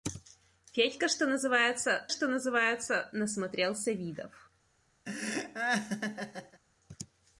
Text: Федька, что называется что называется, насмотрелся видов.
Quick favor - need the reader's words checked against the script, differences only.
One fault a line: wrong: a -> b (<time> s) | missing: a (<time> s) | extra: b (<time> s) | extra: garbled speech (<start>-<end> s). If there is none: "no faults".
no faults